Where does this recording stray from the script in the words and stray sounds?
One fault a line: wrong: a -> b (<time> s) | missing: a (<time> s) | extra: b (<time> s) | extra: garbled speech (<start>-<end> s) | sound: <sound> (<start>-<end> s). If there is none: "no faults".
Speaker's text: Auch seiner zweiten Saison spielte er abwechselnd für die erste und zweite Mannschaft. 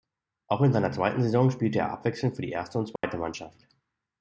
extra: in (0.6 s)
sound: dropout (3.0-3.0 s)